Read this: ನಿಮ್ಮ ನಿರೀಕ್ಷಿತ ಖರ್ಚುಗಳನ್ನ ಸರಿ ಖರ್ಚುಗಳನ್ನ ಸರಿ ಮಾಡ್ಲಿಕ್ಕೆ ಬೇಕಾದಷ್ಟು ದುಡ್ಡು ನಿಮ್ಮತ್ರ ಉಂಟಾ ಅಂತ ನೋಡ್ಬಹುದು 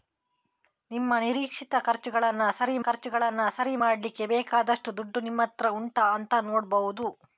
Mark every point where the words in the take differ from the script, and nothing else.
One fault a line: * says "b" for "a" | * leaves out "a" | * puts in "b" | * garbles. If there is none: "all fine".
all fine